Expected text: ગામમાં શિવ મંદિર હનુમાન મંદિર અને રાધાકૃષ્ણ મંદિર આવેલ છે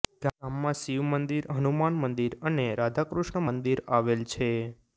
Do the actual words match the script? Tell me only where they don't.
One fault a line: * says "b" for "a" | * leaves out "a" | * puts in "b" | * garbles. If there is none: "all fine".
all fine